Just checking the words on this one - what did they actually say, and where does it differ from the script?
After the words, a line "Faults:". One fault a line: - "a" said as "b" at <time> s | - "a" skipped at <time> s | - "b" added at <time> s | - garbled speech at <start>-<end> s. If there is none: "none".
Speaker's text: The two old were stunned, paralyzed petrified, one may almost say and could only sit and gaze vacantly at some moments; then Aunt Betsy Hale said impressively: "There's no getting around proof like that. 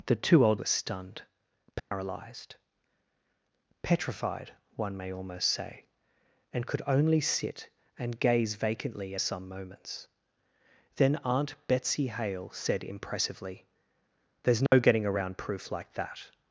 The two old were stunned, paralyzed petrified, one may almost say and could only sit and gaze vacantly at some moments; then Aunt Betsy Hale said impressively: "There's no getting around proof like that.
Faults:
none